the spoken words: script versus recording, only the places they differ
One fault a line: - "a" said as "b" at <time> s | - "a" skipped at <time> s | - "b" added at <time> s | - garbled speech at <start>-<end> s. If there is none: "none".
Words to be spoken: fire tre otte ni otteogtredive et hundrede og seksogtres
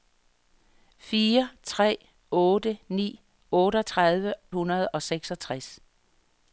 - "et" skipped at 4.3 s